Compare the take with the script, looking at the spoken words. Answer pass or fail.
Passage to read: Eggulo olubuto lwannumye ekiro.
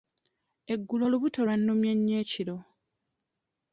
fail